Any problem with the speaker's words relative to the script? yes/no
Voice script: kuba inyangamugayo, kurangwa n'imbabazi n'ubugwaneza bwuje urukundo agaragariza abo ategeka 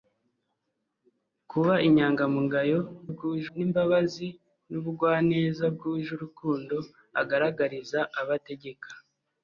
yes